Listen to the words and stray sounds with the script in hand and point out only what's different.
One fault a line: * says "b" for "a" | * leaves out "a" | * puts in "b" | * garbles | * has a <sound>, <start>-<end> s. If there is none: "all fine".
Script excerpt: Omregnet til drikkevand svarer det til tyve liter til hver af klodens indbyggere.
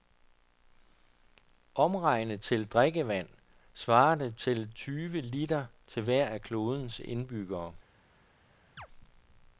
* has a chirp, 8.8-8.9 s